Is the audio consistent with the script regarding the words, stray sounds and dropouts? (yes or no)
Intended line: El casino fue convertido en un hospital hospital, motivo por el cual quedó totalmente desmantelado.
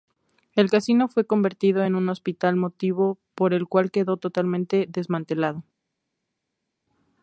no